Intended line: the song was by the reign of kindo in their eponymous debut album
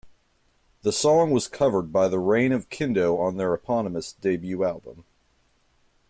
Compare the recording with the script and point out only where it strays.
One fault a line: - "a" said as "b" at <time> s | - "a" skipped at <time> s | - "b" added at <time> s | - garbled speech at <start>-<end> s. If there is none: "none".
- "covered" added at 1.5 s
- "in" said as "on" at 3.2 s